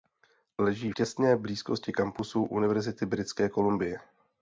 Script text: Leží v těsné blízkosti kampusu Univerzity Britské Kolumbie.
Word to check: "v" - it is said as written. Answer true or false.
false